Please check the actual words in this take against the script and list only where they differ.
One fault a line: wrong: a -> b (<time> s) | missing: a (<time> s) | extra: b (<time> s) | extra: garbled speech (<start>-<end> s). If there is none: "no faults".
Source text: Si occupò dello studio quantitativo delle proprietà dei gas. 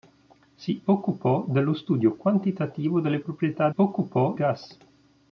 wrong: dei -> occupò (3.8 s)